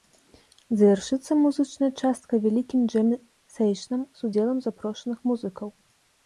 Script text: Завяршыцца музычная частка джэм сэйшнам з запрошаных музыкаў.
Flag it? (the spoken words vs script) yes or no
yes